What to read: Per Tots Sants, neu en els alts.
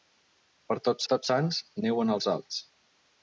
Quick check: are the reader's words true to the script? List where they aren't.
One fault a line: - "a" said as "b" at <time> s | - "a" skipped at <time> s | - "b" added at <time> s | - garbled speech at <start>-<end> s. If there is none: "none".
- "Tots" added at 1.1 s